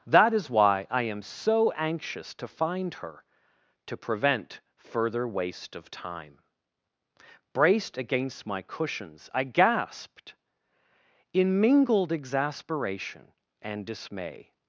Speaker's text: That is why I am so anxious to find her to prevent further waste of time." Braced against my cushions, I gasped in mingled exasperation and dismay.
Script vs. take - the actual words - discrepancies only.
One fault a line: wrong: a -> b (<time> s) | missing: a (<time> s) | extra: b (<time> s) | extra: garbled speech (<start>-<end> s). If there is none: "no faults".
no faults